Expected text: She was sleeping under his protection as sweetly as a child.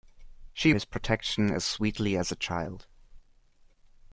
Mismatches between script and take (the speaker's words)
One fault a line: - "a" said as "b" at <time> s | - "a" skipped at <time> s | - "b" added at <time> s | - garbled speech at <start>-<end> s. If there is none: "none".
- "was sleeping under" skipped at 0.7 s